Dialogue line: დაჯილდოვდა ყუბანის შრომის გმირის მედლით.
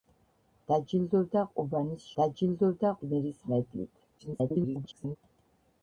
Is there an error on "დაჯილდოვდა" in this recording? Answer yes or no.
no